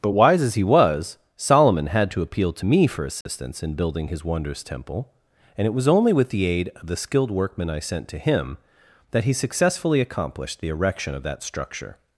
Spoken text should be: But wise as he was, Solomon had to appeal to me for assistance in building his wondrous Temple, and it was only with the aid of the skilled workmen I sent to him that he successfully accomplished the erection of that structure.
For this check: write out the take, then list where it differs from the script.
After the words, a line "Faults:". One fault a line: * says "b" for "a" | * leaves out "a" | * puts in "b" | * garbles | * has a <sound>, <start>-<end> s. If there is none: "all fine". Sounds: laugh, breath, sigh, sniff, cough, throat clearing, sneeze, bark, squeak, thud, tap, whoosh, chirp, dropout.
But wise as he was, Solomon had to appeal to me for assistance in building his wondrous Temple, and it was only with the aid of the skilled workmen I sent to him that he successfully accomplished the erection of that structure.
Faults:
* has a dropout, 3.2-3.3 s